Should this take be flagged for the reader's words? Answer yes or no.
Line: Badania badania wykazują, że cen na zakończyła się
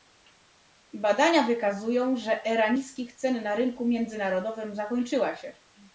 yes